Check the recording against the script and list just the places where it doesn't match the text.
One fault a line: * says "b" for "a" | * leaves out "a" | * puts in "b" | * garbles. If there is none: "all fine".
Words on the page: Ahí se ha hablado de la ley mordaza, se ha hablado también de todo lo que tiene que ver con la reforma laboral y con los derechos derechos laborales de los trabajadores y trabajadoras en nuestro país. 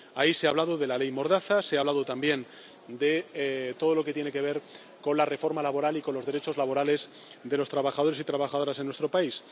* leaves out "derechos"